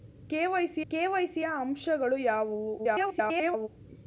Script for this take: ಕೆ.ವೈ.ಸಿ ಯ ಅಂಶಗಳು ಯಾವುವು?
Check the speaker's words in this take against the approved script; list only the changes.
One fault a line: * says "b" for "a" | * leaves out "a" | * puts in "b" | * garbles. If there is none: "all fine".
* puts in "ಕೆ.ವೈ.ಸಿ"
* garbles